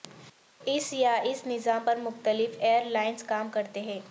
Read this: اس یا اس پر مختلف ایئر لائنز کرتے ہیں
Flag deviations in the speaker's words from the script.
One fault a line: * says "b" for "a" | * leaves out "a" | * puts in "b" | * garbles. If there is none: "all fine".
* puts in "نظام"
* puts in "کام"